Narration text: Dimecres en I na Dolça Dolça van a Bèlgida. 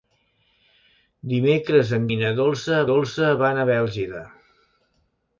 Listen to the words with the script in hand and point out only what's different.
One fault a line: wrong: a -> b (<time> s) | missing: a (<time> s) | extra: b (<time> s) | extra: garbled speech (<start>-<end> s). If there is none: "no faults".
no faults